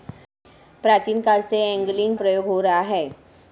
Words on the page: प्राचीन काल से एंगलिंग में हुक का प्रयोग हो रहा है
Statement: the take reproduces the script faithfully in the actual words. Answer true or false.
false